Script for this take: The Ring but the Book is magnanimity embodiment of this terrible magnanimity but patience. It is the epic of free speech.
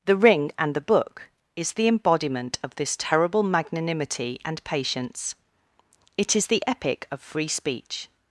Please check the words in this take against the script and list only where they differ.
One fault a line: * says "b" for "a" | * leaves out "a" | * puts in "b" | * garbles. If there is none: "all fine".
* says "and" for "but"
* says "the" for "magnanimity"
* says "and" for "but"